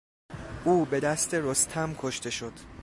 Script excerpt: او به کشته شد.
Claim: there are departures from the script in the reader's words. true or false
true